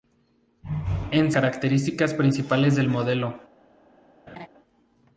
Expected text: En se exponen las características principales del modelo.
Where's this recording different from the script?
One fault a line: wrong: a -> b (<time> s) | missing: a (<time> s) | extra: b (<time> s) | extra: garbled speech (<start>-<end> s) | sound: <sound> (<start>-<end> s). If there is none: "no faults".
missing: se exponen las (1.3 s)
sound: laugh (4.3-4.5 s)